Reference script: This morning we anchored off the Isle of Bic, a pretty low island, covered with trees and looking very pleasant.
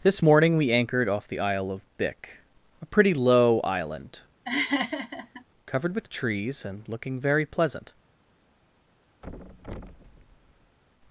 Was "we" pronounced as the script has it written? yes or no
yes